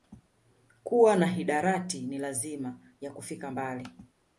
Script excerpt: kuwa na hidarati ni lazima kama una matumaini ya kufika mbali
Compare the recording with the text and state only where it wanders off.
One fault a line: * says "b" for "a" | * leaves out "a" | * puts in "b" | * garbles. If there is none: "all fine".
* leaves out "kama una matumaini"